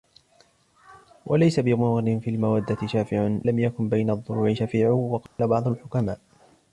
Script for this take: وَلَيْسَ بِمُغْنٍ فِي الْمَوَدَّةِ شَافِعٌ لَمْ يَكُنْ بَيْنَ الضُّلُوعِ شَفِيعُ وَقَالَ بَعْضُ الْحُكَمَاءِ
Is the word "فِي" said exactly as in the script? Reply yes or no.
yes